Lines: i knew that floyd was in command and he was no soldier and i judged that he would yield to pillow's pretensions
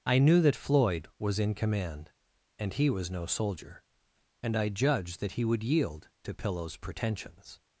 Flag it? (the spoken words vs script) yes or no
no